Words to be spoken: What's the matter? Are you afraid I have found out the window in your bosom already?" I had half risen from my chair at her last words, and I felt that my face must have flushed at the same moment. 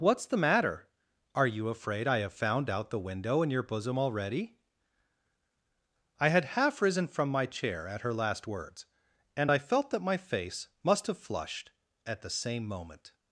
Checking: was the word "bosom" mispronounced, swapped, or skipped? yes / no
no